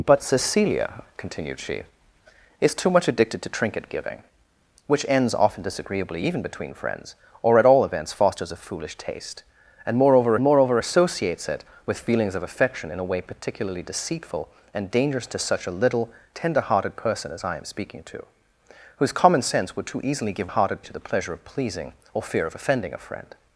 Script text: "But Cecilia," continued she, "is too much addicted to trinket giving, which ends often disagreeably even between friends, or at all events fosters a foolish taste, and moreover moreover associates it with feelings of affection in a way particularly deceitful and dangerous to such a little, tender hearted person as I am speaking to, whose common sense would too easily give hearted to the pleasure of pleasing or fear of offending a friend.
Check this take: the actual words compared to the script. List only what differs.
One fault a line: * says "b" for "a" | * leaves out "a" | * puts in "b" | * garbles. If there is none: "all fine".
all fine